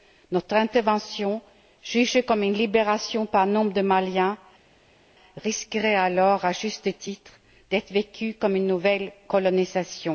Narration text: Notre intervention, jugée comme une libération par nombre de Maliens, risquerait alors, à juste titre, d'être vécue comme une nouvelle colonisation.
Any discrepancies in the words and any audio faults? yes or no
no